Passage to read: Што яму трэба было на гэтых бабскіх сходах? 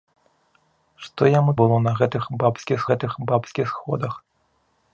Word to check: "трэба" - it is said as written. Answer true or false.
false